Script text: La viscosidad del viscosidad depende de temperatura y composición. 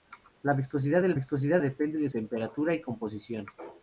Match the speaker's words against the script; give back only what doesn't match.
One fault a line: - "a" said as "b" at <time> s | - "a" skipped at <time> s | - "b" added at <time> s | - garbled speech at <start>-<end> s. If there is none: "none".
none